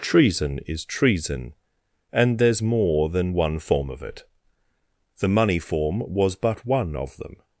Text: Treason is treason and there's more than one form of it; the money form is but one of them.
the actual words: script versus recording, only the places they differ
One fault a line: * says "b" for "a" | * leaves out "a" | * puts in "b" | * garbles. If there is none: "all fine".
* says "was" for "is"